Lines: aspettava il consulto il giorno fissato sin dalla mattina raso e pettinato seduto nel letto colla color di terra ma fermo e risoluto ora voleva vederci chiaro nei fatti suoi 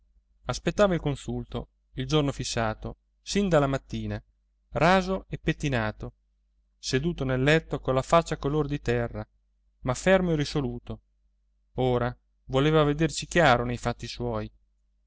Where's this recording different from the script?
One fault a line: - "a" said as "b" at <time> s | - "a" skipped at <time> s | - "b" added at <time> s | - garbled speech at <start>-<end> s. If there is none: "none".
- "faccia" added at 8.0 s